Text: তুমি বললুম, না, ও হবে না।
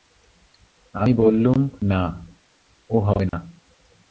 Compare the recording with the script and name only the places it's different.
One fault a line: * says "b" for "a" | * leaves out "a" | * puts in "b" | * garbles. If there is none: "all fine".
* says "আমি" for "তুমি"